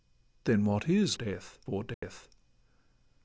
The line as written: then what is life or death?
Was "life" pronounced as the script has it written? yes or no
no